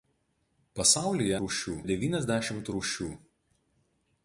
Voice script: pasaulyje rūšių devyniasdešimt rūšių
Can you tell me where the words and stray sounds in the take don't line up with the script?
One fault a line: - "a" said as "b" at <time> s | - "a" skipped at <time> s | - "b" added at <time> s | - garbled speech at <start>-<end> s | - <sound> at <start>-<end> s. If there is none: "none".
none